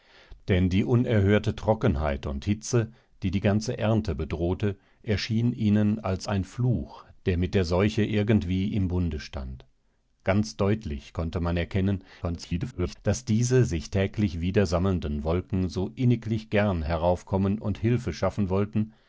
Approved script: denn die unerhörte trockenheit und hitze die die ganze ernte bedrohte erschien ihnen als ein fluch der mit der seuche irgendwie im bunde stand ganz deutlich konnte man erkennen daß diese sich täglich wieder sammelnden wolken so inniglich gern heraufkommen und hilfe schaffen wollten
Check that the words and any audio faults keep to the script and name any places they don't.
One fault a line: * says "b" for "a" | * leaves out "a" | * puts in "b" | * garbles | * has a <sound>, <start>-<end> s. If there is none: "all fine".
* garbles